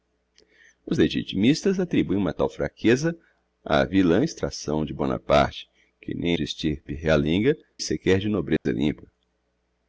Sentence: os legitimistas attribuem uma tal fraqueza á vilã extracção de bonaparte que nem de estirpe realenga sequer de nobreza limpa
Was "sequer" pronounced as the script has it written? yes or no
yes